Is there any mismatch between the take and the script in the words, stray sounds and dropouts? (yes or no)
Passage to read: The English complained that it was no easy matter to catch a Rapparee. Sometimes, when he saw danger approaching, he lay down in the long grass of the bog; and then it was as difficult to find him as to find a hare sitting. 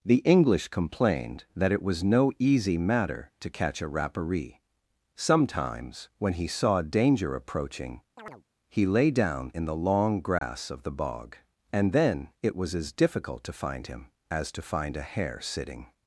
yes